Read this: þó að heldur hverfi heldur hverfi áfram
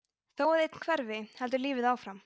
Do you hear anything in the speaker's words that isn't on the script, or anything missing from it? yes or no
yes